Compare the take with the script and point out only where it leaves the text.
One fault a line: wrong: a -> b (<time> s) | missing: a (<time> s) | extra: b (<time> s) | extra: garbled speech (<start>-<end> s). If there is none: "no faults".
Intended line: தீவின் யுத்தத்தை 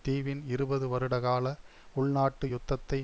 extra: இருபது வருடகால உள்நாட்டு (0.5 s)